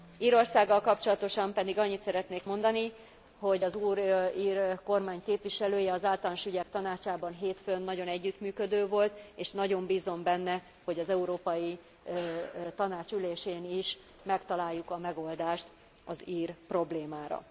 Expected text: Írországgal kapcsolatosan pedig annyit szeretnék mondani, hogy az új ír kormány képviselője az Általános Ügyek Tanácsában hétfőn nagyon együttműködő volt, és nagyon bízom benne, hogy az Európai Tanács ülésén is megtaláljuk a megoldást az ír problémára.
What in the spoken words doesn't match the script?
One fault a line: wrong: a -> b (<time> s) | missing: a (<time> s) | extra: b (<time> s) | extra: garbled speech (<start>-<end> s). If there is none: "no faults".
no faults